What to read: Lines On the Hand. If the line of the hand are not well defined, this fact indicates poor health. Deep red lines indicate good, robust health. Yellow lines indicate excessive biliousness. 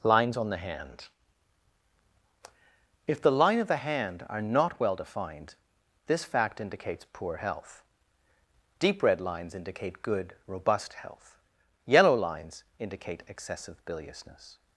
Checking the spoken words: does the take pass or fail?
pass